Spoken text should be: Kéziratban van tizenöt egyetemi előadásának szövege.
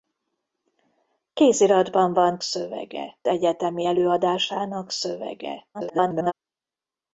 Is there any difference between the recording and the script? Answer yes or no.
yes